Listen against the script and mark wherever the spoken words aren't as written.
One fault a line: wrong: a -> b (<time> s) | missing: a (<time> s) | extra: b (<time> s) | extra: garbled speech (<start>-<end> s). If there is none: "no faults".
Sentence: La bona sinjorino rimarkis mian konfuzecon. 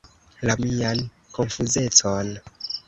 missing: bona sinjorino rimarkis (0.5 s)